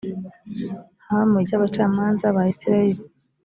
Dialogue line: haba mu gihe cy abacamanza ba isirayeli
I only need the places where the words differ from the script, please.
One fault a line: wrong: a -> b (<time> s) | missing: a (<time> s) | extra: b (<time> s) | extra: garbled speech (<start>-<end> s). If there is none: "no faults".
missing: gihe (1.4 s)